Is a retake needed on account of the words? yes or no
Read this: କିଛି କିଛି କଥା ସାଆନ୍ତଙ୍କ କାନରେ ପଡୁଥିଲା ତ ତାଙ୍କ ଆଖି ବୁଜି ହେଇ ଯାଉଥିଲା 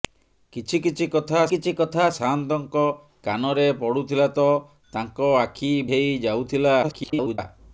yes